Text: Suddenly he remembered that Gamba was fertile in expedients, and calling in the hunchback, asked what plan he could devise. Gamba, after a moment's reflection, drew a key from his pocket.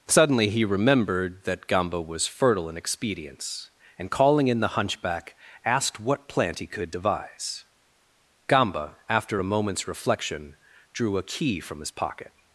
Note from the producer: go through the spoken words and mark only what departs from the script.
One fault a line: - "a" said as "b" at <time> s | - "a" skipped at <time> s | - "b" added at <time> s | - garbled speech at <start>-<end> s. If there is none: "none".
- "plan" said as "plant" at 6.3 s